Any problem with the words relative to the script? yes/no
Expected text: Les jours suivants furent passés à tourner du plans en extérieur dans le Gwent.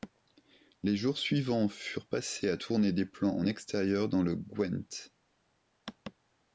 yes